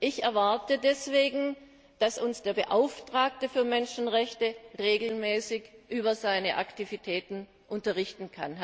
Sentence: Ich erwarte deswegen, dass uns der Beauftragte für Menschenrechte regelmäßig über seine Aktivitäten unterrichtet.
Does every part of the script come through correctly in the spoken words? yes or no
yes